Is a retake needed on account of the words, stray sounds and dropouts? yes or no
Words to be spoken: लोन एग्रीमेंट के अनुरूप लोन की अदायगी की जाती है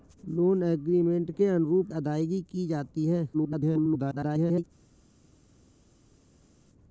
yes